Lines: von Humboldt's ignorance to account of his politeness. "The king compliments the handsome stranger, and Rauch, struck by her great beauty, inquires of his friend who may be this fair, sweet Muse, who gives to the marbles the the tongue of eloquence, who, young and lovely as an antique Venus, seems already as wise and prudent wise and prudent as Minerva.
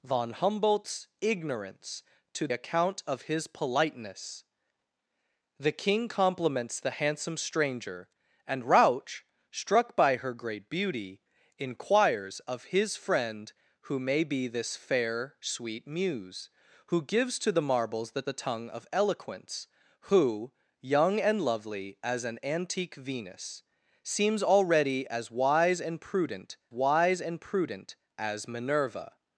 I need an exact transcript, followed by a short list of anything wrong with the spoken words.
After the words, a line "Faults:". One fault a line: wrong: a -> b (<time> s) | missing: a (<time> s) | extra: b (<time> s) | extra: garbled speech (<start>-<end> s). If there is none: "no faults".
von Humboldt's ignorance to account of his politeness. "The king compliments the handsome stranger, and Rauch, struck by her great beauty, inquires of his friend who may be this fair, sweet Muse, who gives to the marbles the the tongue of eloquence, who, young and lovely as an antique Venus, seems already as wise and prudent wise and prudent as Minerva.
Faults:
no faults